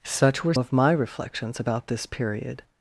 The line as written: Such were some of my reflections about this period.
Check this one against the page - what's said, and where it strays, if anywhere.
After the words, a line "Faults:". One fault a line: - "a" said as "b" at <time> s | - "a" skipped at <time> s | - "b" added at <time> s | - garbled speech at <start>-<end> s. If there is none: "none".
Such were of my reflections about this period.
Faults:
- "some" skipped at 0.5 s